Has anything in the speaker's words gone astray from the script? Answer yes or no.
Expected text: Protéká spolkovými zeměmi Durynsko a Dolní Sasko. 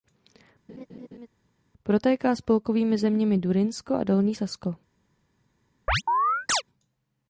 no